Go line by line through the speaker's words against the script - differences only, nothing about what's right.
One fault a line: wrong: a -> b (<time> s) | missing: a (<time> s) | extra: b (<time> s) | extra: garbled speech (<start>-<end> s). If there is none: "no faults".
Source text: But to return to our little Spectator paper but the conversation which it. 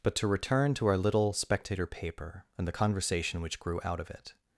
wrong: but -> and (2.6 s)
extra: grew out of (3.6 s)